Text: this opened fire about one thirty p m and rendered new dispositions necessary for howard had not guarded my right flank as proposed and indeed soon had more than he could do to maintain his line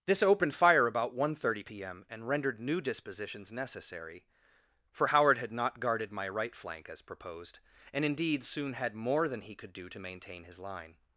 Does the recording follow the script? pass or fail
pass